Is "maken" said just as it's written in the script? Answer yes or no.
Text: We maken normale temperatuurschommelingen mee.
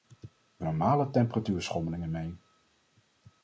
no